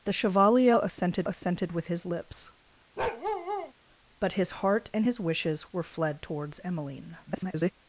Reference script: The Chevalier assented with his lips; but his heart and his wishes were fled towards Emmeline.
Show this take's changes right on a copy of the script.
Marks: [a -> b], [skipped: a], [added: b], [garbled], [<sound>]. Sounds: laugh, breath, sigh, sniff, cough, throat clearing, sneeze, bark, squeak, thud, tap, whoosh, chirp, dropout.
The Chevalier assented [added: assented] with his lips; [bark] but his heart and his wishes were fled towards Emmeline. [garbled]